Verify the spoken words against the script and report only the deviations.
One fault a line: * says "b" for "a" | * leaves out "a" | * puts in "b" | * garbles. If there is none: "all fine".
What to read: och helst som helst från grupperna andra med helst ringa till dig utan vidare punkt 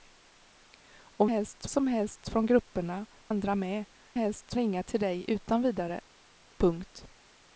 all fine